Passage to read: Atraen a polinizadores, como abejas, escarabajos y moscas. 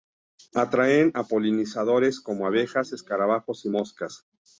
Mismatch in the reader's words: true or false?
false